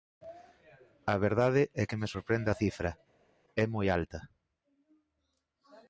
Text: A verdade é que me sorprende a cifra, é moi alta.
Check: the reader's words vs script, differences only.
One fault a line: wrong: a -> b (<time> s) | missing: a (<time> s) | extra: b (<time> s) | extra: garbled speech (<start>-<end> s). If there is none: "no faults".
no faults